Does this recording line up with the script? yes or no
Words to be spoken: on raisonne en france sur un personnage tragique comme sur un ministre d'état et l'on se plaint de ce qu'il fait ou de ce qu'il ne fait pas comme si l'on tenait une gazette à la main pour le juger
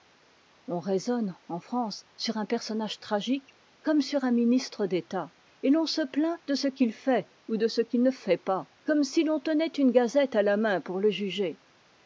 yes